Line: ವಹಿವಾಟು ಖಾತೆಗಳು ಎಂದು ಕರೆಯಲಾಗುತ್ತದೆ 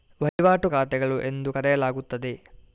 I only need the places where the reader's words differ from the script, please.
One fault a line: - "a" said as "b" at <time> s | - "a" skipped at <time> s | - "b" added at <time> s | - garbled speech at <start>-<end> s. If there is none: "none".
none